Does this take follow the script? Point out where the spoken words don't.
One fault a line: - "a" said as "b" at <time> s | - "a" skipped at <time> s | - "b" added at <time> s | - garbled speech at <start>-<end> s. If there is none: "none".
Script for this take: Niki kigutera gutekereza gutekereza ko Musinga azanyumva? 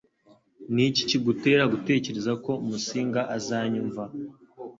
- "gutekereza" skipped at 2.3 s